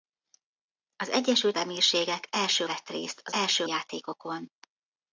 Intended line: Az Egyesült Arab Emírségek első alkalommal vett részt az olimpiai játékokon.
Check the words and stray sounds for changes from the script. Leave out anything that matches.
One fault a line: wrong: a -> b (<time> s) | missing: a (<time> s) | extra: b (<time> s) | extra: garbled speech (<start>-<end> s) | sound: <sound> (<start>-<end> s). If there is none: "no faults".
missing: Arab (1.6 s)
missing: alkalommal (2.7 s)
wrong: olimpiai -> első (3.3 s)